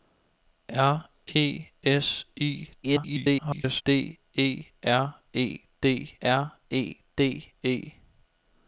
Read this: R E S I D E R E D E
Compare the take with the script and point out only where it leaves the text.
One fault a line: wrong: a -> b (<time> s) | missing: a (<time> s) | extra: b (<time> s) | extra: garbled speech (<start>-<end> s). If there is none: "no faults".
extra: garbled speech (2.8-3.8 s)
extra: R E D (6.2 s)